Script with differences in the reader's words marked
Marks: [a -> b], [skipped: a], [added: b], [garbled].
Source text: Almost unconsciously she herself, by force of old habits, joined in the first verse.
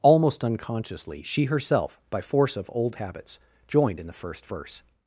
Almost unconsciously she herself, by force of old habits, joined in the first verse.